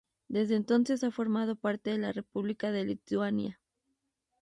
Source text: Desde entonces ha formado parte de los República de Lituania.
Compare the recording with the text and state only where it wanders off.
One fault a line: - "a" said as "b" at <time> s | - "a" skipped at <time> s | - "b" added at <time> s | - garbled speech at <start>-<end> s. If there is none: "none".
- "los" said as "la" at 2.0 s